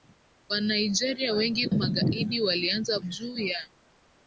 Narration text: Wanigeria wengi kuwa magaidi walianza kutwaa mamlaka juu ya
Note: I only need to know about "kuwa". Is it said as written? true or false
false